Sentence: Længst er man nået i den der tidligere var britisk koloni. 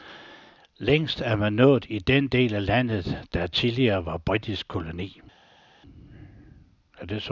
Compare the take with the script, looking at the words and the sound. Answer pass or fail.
fail